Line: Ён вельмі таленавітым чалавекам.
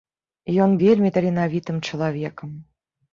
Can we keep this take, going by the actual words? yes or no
yes